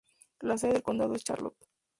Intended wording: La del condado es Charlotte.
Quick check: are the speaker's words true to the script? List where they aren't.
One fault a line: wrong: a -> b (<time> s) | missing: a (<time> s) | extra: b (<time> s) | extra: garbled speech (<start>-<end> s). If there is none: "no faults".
extra: sede (0.6 s)